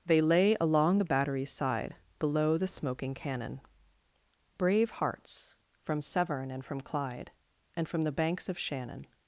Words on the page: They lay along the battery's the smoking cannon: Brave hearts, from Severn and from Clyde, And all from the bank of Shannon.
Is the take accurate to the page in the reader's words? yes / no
no